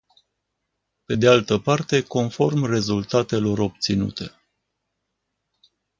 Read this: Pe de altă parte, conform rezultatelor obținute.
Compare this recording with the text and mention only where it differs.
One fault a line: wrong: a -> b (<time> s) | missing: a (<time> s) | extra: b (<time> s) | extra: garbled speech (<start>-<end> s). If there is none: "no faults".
no faults